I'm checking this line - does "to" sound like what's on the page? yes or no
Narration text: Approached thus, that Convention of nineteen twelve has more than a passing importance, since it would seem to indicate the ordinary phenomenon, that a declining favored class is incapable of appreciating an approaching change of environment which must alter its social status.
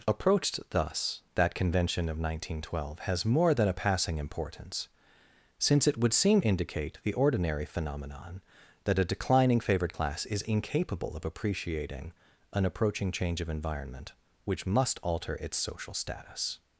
no